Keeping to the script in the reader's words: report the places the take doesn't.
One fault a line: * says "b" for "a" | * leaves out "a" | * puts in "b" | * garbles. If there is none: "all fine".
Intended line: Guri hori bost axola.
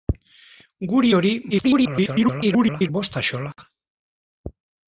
* garbles